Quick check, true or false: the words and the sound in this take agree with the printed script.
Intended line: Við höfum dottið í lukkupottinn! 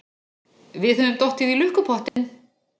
false